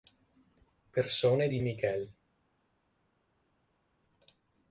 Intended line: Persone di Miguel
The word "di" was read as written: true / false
true